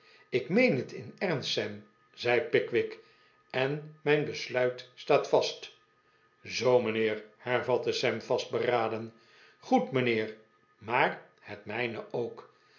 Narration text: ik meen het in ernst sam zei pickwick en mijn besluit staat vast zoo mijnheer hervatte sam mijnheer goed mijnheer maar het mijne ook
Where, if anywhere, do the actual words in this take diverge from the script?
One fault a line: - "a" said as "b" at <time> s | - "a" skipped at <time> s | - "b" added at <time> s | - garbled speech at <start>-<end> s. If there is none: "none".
- "mijnheer" said as "vastberaden" at 8.2 s